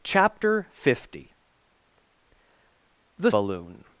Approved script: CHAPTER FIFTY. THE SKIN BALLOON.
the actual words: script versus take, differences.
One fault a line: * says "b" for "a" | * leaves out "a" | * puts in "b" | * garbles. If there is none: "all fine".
* leaves out "SKIN"